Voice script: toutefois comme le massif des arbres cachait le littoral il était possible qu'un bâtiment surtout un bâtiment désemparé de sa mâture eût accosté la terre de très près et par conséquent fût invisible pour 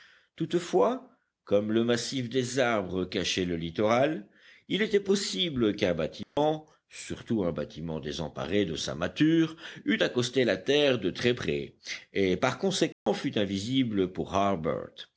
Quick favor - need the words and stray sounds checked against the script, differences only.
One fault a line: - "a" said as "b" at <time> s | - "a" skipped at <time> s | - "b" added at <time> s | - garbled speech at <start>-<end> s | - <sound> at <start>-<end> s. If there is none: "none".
- dropout at 6.2-6.4 s
- dropout at 12.9-13.1 s